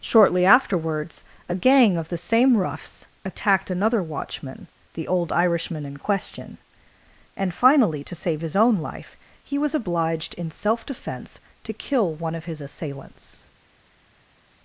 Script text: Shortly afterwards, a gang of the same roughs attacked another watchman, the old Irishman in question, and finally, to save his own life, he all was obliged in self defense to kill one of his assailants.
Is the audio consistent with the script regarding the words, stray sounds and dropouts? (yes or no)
no